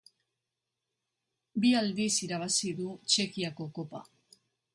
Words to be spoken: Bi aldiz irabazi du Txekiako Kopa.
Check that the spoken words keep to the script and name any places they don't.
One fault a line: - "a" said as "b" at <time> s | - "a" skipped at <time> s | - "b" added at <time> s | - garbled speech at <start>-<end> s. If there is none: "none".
none